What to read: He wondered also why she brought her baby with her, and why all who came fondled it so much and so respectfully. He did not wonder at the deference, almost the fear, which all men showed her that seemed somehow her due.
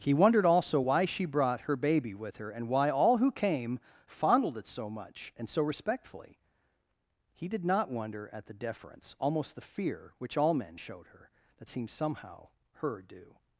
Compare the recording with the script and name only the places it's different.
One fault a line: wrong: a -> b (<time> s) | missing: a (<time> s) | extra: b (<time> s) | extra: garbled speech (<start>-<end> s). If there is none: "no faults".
no faults